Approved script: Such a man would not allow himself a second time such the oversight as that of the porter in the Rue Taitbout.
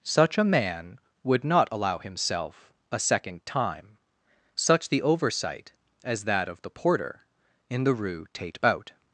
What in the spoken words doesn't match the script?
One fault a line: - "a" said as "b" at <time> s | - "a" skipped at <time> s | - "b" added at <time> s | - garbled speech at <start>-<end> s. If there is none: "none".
none